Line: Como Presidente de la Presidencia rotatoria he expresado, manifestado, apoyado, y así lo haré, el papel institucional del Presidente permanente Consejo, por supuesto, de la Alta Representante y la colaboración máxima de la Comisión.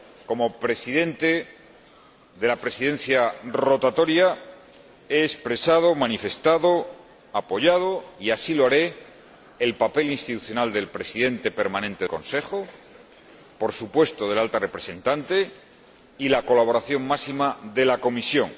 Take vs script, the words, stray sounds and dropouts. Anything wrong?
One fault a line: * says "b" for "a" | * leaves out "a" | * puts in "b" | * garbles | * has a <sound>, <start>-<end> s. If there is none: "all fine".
all fine